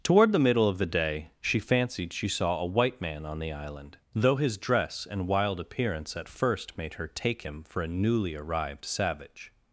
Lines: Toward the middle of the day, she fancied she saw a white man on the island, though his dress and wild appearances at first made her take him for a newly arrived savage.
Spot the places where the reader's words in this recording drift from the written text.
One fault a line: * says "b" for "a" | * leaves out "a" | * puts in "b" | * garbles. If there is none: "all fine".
* says "appearance" for "appearances"